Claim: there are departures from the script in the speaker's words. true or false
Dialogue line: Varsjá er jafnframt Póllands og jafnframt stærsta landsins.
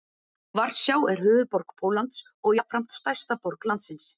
true